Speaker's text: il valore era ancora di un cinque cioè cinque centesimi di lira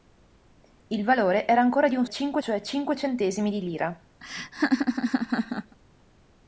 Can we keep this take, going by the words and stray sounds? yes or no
no